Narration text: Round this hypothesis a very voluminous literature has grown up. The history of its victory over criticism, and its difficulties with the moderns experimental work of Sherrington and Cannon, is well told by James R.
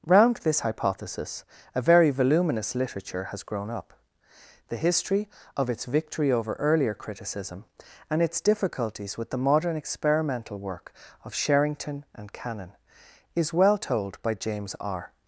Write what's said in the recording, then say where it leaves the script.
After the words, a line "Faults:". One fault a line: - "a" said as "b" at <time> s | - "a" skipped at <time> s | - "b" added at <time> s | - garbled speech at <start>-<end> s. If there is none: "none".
Round this hypothesis a very voluminous literature has grown up. The history of its victory over earlier criticism, and its difficulties with the modern experimental work of Sherrington and Cannon, is well told by James R.
Faults:
- "earlier" added at 6.5 s
- "moderns" said as "modern" at 9.4 s